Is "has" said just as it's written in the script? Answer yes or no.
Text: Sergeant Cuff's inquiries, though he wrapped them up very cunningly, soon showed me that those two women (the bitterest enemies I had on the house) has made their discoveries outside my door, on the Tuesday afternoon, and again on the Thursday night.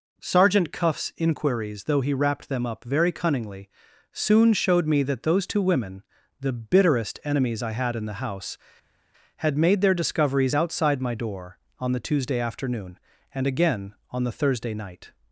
no